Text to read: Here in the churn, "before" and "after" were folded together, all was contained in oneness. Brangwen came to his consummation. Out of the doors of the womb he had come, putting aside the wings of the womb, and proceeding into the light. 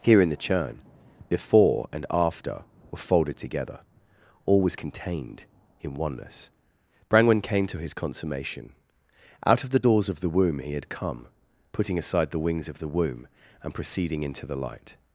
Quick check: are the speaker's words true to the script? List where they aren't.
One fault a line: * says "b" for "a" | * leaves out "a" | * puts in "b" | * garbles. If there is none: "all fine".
all fine